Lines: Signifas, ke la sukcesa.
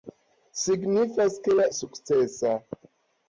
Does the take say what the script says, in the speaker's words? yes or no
yes